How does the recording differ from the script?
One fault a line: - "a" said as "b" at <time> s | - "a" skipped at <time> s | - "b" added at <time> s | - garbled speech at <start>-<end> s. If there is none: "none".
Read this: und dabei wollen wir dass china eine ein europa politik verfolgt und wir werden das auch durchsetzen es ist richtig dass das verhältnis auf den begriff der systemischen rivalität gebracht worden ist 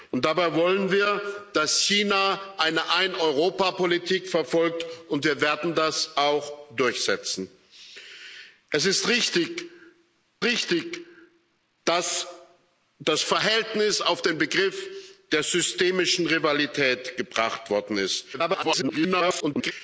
- "richtig" added at 10.4 s
- garbled speech at 18.3-19.7 s